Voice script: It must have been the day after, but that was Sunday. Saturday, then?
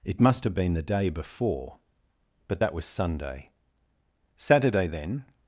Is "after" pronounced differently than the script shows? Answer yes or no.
yes